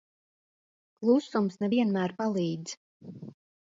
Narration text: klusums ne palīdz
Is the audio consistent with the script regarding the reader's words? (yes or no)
no